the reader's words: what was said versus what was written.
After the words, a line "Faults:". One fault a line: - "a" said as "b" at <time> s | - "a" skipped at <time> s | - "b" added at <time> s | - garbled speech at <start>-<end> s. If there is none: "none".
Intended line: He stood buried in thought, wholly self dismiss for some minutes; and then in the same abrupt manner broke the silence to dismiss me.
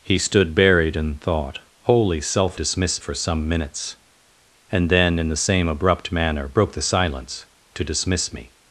He stood buried in thought, wholly self dismiss for some minutes; and then in the same abrupt manner broke the silence to dismiss me.
Faults:
none